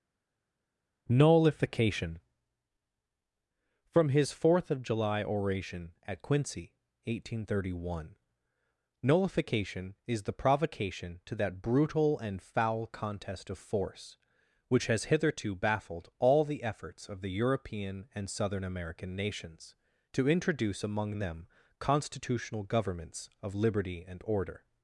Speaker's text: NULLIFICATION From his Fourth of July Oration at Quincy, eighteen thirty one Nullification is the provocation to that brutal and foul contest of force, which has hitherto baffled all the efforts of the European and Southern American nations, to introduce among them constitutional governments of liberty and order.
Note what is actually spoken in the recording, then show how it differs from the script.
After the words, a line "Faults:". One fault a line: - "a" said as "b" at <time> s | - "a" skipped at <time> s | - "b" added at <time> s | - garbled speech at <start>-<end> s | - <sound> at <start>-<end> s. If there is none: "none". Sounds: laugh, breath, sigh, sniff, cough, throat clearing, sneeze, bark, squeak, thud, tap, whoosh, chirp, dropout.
NULLIFICATION From his Fourth of July Oration at Quincy, eighteen thirty one Nullification is the provocation to that brutal and foul contest of force, which has hitherto baffled all the efforts of the European and Southern American nations, to introduce among them constitutional governments of liberty and order.
Faults:
none